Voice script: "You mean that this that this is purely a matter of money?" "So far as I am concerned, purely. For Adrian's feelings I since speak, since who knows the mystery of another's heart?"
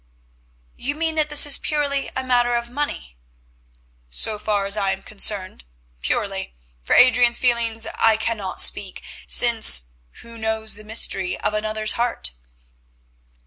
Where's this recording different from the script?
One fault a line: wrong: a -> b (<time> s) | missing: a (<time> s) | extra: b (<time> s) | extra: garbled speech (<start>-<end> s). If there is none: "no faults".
missing: that this (1.4 s)
wrong: since -> cannot (8.2 s)